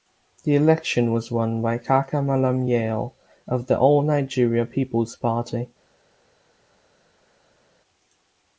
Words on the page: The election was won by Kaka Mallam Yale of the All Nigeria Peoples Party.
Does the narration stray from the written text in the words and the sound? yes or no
no